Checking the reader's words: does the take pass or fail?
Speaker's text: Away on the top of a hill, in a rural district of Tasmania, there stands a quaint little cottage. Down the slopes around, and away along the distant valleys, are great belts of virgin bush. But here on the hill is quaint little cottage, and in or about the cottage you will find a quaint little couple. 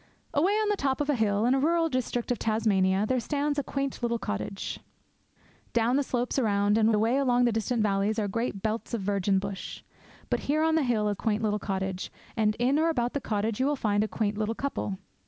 pass